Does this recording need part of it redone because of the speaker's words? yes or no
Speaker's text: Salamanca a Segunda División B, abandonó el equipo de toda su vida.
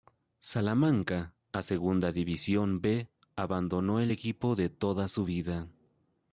no